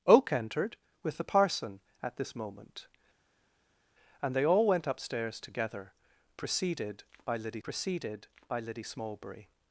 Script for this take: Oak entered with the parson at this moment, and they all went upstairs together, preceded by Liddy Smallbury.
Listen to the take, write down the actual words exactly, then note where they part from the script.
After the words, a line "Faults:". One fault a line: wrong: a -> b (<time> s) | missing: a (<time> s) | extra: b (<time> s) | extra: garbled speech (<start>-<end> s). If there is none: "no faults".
Oak entered with the parson at this moment, and they all went upstairs together, preceded by Liddy preceded by Liddy Smallbury.
Faults:
extra: preceded by Liddy (7.6 s)